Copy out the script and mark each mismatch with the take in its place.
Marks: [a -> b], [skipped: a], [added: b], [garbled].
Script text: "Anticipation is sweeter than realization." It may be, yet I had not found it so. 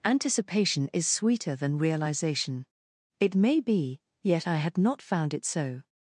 "Anticipation is sweeter than realization." It may be, yet I had not found it so.